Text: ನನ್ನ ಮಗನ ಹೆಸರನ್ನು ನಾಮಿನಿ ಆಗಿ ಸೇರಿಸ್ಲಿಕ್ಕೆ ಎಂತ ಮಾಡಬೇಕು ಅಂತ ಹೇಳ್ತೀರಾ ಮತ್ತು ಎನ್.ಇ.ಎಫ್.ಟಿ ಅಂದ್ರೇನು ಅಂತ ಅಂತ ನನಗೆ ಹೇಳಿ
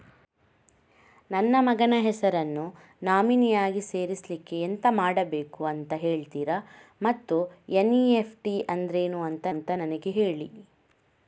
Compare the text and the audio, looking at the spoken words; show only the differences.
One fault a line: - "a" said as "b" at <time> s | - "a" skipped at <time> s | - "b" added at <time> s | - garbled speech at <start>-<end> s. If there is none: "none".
none